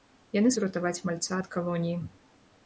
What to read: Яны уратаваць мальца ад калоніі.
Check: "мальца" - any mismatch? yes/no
no